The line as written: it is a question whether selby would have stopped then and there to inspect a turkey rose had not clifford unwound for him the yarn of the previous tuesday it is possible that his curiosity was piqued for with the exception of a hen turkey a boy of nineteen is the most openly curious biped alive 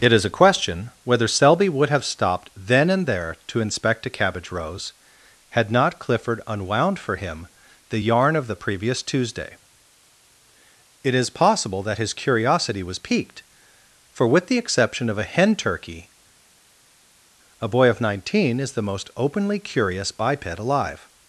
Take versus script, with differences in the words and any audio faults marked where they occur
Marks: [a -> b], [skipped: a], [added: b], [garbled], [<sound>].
it is a question whether selby would have stopped then and there to inspect a [turkey -> cabbage] rose had not clifford unwound for him the yarn of the previous tuesday it is possible that his curiosity was piqued for with the exception of a hen turkey a boy of nineteen is the most openly curious biped alive